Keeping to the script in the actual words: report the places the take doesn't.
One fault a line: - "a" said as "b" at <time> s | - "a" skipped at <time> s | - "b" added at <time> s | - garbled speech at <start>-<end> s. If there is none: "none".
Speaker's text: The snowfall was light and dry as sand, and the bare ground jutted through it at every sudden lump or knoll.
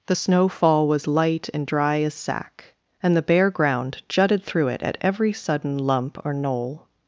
- "sand" said as "sack" at 2.1 s